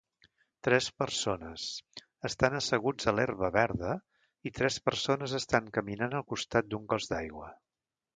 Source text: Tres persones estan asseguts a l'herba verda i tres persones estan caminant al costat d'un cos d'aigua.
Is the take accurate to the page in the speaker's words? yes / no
yes